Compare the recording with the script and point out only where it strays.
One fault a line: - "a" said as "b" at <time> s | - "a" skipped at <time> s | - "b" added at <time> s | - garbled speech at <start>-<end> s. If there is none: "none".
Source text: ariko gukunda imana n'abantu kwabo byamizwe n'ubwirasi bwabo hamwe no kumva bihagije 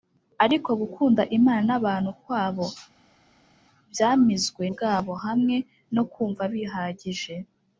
- "n'ubwirasi" skipped at 4.6 s